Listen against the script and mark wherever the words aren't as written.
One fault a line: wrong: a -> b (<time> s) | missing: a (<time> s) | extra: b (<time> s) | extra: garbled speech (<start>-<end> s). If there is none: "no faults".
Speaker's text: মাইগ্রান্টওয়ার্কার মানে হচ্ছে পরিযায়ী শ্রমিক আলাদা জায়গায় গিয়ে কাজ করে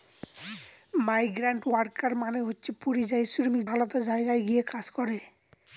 no faults